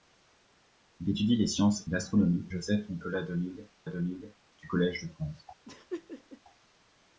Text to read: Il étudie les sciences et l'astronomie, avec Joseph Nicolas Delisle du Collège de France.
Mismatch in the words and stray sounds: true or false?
true